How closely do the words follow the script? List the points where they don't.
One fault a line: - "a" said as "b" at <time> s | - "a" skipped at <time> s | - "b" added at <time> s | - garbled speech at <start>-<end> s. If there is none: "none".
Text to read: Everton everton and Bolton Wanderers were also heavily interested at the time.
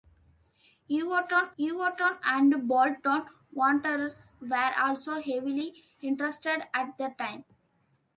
none